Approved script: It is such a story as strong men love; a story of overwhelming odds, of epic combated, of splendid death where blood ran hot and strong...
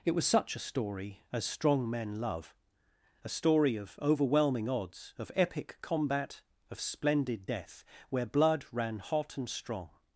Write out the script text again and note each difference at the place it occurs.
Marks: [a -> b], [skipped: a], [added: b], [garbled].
It [is -> was] such a story as strong men love; a story of overwhelming odds, of epic [combated, -> combat] of splendid death where blood ran hot and strong...